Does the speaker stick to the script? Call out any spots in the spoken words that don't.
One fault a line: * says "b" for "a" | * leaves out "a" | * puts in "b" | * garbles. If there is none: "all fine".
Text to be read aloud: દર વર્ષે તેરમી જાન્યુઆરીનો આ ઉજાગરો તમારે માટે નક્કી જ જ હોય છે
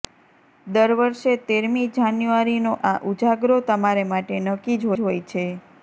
all fine